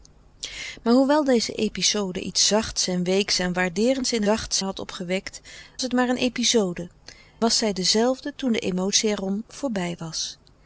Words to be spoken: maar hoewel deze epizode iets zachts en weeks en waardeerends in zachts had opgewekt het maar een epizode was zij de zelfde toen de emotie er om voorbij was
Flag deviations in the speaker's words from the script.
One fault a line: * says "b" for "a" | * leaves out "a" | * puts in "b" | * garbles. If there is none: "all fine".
all fine